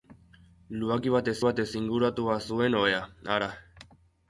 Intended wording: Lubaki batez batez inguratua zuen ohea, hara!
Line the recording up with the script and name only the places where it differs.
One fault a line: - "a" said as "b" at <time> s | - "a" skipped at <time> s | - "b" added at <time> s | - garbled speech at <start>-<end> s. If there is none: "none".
none